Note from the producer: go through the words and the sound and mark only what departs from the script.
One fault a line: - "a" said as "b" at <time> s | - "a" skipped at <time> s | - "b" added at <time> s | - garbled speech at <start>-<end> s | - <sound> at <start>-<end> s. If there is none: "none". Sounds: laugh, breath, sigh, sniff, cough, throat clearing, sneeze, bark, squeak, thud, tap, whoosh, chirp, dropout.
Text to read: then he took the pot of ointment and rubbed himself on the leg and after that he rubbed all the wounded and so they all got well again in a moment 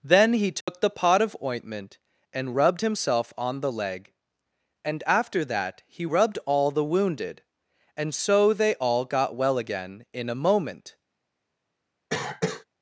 - dropout at 0.6-0.7 s
- cough at 12.1-12.6 s